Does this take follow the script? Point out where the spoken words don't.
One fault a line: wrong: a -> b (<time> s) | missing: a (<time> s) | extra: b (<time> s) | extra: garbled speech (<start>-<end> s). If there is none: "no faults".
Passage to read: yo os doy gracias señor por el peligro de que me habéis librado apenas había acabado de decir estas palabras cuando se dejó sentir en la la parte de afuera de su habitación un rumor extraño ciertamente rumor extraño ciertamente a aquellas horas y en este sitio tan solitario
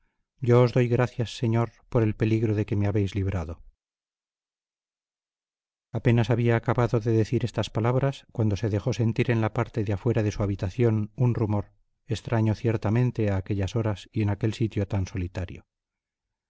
missing: la (9.5 s)
missing: rumor extraño ciertamente (13.3 s)
wrong: este -> aquel (14.3 s)